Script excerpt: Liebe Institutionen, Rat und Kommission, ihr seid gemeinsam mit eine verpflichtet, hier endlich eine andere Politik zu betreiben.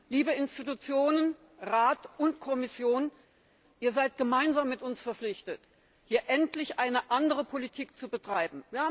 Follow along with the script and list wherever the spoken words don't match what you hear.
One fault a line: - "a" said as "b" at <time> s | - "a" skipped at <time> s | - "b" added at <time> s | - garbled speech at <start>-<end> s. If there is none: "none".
- "eine" said as "uns" at 4.8 s